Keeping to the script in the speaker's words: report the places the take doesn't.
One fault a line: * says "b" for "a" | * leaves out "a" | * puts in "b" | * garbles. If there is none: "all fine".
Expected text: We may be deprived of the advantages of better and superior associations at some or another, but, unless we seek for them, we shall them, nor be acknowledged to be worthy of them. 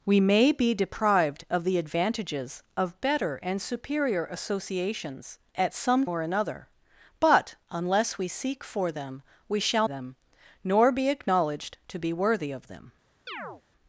all fine